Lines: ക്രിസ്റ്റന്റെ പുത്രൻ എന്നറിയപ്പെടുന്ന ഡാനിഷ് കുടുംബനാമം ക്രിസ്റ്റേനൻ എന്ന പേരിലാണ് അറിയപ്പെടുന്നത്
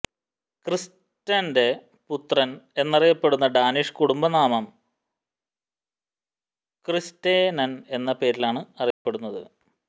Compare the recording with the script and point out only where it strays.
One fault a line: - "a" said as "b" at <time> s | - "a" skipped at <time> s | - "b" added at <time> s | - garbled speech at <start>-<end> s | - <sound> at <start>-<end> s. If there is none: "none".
- dropout at 8.9-9.1 s